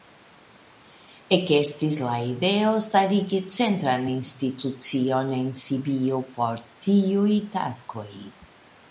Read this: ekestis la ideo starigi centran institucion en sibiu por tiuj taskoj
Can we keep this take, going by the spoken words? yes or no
yes